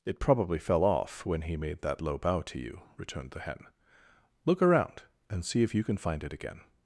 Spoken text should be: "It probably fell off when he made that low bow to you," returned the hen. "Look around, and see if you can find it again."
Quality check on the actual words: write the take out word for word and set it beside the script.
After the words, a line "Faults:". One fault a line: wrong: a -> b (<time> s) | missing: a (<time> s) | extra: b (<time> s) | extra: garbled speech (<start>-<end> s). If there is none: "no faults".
"It probably fell off when he made that low bow to you," returned the hen. "Look around, and see if you can find it again."
Faults:
no faults